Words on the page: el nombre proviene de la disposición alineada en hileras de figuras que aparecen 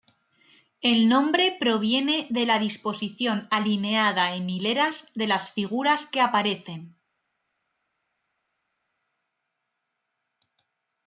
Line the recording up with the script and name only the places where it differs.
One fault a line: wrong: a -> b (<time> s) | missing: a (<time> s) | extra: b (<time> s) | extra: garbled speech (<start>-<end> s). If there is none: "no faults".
extra: las (5.3 s)